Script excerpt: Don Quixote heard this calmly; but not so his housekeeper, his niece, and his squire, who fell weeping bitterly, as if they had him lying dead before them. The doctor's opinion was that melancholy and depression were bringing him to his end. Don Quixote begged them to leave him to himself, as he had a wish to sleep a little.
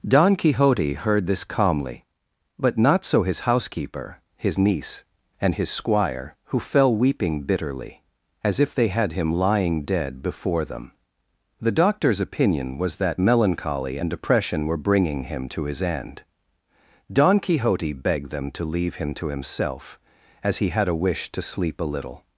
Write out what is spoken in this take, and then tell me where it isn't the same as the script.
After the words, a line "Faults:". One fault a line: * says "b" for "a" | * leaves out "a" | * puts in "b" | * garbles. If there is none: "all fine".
Don Quixote heard this calmly; but not so his housekeeper, his niece, and his squire, who fell weeping bitterly, as if they had him lying dead before them. The doctor's opinion was that melancholy and depression were bringing him to his end. Don Quixote begged them to leave him to himself, as he had a wish to sleep a little.
Faults:
all fine